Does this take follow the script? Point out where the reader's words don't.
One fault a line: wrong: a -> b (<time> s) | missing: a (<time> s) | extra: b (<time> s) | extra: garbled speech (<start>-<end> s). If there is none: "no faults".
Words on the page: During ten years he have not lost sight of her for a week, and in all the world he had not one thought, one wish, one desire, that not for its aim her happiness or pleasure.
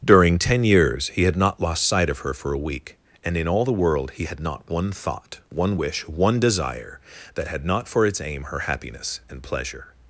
wrong: have -> had (1.2 s)
extra: had (7.5 s)
wrong: or -> and (9.3 s)